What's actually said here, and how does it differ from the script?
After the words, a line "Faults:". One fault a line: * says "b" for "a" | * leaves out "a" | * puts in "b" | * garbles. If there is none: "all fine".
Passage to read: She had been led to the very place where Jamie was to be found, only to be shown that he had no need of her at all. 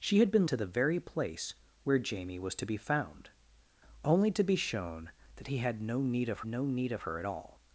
She had been to the very place where Jamie was to be found, only to be shown that he had no need of no need of her at all.
Faults:
* leaves out "led"
* puts in "no need of"